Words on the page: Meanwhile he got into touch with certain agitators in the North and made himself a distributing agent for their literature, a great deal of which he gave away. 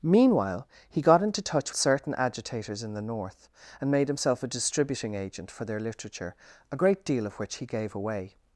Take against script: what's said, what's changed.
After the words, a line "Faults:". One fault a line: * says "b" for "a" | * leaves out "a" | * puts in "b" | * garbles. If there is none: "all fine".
Meanwhile he got into touch certain agitators in the North and made himself a distributing agent for their literature, a great deal of which he gave away.
Faults:
* leaves out "with"